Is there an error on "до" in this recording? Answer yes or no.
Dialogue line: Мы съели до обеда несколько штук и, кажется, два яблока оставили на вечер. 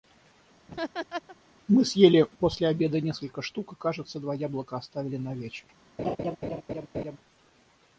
yes